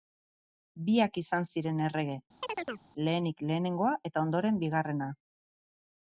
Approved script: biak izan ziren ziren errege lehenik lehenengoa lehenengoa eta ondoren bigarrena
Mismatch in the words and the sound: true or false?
true